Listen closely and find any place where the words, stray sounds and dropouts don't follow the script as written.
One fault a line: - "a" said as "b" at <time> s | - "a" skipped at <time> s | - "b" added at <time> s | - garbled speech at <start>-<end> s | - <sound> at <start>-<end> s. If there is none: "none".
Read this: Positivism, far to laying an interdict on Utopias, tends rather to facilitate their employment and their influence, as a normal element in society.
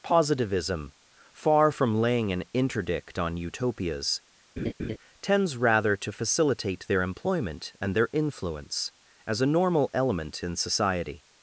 - "to" said as "from" at 1.7 s
- laugh at 4.6-5.0 s